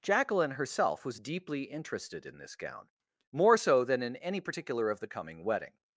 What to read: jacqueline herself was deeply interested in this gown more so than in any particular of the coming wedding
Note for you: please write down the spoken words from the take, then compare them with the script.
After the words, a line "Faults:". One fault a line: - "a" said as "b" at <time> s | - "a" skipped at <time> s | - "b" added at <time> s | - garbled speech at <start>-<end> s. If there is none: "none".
jacqueline herself was deeply interested in this gown more so than in any particular of the coming wedding
Faults:
none